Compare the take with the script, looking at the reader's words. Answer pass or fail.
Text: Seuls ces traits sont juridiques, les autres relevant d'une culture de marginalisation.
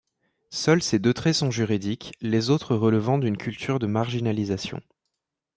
fail